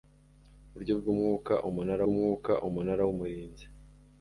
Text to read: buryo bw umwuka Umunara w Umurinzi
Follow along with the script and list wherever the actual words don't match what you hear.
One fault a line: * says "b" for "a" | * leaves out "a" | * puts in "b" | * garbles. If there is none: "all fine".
* puts in "umwuka Umunara"